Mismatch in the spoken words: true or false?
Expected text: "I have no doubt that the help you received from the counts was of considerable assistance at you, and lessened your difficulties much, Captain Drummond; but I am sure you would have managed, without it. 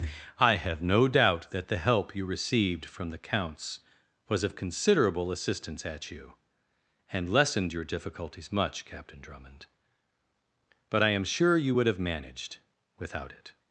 false